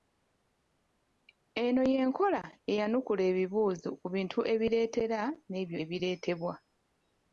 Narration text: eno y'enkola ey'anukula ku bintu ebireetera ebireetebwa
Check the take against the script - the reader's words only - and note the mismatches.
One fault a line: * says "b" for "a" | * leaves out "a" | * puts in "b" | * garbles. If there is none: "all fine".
* puts in "ebibuuzo"
* puts in "n'ebyo"